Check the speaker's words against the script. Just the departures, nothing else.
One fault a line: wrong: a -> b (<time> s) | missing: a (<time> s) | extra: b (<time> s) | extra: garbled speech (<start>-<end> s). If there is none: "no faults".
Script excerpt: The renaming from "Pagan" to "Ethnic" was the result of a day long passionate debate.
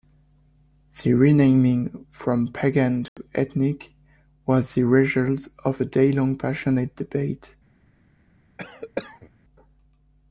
no faults